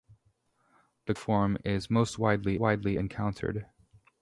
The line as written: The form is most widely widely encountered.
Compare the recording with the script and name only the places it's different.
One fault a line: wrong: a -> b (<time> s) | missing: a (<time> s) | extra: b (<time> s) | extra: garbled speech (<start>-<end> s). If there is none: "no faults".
no faults